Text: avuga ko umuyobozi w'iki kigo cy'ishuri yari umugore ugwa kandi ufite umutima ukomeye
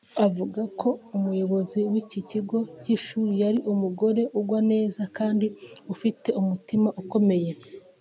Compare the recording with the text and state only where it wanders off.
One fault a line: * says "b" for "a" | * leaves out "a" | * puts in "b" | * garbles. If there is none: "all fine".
* puts in "neza"